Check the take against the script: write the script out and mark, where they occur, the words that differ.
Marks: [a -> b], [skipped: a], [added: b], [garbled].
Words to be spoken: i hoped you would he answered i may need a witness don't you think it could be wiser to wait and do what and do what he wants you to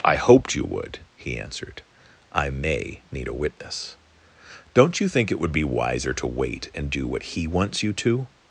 i hoped you would he answered i may need a witness don't you think it [could -> would] be wiser to wait and do what [skipped: and do what] he wants you to